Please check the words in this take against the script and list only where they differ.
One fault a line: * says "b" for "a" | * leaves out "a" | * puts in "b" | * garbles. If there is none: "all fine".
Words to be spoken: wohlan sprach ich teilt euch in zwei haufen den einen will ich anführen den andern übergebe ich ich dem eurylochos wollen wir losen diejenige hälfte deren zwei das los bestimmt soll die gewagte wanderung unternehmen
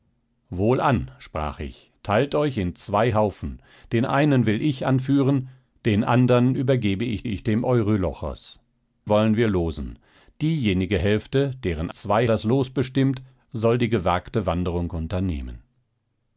all fine